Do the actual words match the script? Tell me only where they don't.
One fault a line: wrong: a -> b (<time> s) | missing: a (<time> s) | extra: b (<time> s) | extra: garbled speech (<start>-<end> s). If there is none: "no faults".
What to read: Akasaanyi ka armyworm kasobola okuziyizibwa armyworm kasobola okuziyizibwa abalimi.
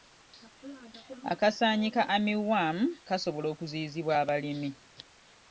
missing: armyworm kasobola okuziyizibwa (4.1 s)